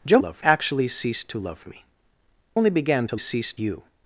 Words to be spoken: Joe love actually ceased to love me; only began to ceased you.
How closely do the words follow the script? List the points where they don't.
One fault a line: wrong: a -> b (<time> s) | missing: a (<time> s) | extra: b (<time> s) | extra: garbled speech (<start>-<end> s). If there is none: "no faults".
no faults